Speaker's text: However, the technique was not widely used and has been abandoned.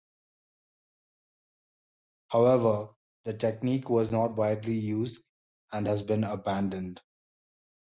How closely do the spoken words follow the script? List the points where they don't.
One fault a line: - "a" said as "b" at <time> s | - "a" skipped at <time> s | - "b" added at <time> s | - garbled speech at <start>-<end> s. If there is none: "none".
none